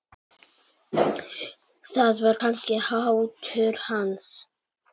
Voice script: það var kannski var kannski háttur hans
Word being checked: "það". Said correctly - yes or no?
yes